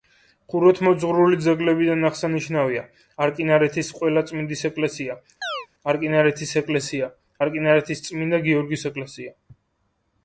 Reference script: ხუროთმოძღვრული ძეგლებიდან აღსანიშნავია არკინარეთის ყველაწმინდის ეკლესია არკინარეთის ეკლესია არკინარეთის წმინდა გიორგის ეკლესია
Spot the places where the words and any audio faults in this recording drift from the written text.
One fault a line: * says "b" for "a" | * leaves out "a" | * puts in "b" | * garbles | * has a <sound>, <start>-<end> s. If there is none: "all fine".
* has a chirp, 5.4-5.7 s